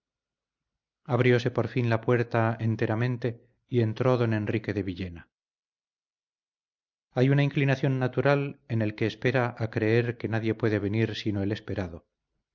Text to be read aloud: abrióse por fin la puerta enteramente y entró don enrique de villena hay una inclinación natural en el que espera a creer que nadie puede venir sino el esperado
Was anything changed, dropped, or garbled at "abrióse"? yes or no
no